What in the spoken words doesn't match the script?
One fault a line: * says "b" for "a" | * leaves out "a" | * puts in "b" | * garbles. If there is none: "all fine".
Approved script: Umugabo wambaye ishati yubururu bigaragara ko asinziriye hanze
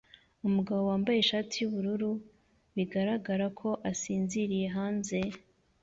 all fine